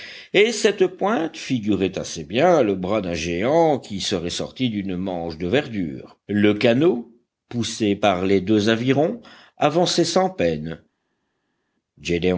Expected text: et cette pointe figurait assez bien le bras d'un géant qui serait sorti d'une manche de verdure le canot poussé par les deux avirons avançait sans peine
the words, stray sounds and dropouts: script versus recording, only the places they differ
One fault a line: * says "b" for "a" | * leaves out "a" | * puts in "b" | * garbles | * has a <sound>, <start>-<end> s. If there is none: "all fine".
all fine